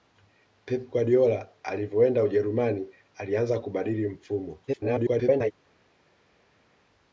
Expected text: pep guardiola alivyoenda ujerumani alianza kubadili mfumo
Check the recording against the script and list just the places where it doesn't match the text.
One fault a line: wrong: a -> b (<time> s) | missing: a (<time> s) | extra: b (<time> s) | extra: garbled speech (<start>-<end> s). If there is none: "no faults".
extra: garbled speech (4.7-5.5 s)